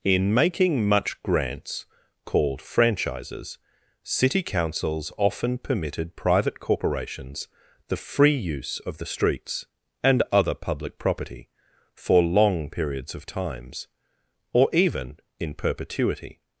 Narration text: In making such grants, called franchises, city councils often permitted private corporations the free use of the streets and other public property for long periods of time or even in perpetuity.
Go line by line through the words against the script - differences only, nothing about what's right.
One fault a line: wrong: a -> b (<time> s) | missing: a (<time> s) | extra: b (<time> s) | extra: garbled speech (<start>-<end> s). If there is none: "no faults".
wrong: such -> much (0.9 s)
wrong: time -> times (13.2 s)